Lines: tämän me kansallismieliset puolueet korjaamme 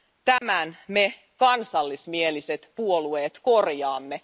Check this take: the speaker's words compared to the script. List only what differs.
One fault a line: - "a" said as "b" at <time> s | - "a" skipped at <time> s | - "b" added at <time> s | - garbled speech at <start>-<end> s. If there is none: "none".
none